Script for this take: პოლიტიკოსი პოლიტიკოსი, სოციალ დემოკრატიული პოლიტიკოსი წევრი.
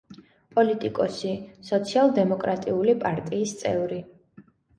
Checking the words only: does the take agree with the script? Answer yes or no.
no